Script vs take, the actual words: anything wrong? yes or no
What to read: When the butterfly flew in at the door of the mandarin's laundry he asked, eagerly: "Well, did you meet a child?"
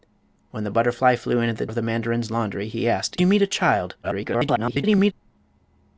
yes